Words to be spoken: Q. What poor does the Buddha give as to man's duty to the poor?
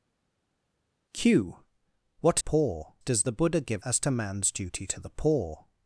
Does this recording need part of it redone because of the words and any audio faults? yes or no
no